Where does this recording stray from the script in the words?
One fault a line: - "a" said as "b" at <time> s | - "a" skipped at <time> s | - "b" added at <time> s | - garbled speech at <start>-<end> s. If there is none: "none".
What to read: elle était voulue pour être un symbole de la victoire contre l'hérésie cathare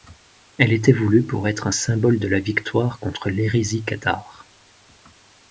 none